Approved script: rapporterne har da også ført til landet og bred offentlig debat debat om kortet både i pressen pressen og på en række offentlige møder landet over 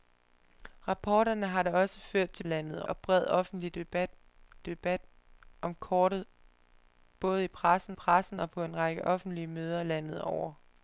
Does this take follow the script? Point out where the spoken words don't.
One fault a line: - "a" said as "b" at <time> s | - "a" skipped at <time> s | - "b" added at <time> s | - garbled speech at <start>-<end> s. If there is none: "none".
none